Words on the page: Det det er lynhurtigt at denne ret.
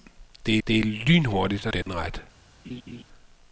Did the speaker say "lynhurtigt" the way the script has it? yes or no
yes